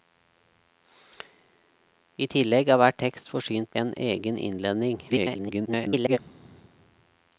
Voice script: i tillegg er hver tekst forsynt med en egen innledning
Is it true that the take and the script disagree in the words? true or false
true